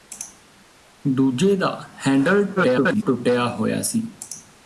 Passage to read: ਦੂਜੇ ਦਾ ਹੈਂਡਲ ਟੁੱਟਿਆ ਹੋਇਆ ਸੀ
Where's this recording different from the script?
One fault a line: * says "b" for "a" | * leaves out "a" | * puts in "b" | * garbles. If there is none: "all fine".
* garbles